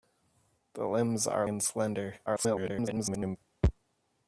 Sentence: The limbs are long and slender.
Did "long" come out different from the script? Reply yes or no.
yes